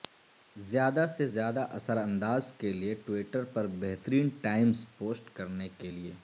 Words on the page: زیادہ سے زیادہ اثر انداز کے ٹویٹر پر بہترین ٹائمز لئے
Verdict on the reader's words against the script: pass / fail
fail